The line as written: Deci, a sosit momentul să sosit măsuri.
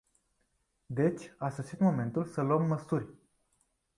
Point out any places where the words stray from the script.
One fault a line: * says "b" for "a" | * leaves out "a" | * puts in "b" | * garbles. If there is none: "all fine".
* says "luăm" for "sosit"